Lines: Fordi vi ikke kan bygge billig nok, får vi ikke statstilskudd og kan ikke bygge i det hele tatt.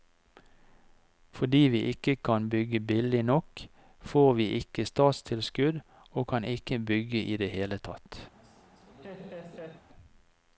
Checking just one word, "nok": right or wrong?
right